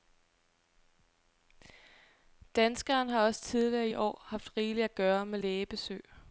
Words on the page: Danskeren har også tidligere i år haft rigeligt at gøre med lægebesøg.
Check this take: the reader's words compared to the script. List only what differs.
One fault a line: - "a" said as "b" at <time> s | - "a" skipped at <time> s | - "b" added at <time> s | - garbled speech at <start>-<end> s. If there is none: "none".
none